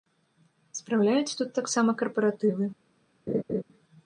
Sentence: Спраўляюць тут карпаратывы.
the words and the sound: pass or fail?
fail